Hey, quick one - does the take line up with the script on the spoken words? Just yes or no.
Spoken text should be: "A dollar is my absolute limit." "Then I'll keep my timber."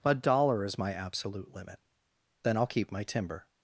yes